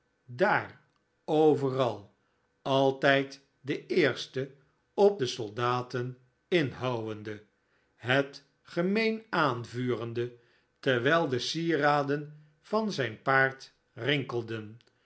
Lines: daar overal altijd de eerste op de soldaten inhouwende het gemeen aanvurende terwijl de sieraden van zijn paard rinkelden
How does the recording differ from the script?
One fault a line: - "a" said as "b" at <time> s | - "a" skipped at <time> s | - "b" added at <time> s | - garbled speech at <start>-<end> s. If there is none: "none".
none